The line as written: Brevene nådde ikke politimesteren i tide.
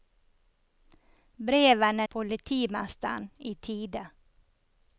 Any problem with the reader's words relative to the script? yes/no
yes